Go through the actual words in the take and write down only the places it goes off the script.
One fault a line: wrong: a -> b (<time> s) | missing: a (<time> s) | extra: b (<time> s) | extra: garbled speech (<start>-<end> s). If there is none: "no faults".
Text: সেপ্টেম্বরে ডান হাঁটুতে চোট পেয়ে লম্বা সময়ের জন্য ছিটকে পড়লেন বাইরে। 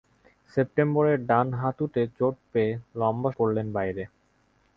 missing: সময়ের জন্য ছিটকে (3.3 s)